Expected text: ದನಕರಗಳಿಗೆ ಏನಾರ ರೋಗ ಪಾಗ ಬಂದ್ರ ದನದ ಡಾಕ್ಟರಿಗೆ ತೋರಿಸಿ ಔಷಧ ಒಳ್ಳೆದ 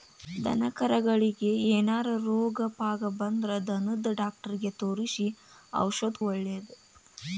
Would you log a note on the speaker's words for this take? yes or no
no